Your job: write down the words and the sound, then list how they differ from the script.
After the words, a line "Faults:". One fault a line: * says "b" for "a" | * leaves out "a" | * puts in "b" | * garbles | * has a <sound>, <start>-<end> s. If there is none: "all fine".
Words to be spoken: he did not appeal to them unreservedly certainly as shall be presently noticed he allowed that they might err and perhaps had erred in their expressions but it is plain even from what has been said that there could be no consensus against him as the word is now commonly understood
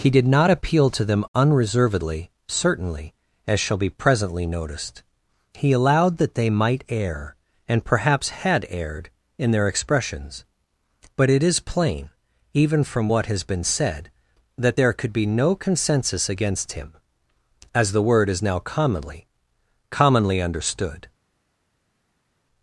he did not appeal to them unreservedly certainly as shall be presently noticed he allowed that they might err and perhaps had erred in their expressions but it is plain even from what has been said that there could be no consensus against him as the word is now commonly commonly understood
Faults:
* puts in "commonly"